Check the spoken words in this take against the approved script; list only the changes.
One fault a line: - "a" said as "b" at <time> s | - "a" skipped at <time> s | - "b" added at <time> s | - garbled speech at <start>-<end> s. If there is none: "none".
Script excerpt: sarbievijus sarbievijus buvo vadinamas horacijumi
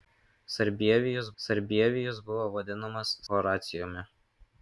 none